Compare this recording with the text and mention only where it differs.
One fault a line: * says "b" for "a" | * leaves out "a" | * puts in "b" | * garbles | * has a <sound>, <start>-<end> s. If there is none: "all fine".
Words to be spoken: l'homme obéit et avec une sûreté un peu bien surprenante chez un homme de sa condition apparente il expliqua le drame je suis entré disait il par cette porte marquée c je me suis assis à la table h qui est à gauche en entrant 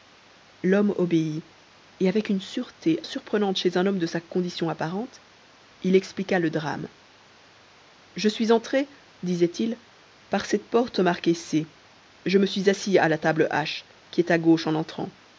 * leaves out "un peu bien"